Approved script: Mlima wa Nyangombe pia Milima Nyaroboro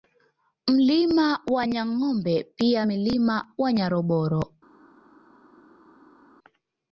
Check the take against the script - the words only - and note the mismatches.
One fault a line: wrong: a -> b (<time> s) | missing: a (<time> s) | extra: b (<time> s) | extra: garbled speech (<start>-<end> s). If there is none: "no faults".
extra: ya (3.6 s)